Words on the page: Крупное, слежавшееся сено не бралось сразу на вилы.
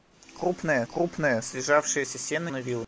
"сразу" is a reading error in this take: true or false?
true